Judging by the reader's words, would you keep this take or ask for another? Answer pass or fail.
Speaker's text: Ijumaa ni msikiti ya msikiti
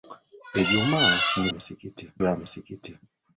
pass